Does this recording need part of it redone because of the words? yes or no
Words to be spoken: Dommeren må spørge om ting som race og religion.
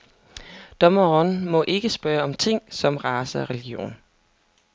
yes